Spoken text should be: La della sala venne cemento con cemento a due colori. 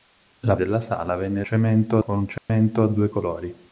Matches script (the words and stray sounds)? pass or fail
fail